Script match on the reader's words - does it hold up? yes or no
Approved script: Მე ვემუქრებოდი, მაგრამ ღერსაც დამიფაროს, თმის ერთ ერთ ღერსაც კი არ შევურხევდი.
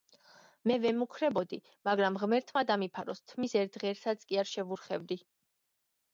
no